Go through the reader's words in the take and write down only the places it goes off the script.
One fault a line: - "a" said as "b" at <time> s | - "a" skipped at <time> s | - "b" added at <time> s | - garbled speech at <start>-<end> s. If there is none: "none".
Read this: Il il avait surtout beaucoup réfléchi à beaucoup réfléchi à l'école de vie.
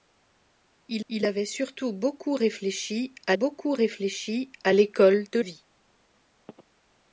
none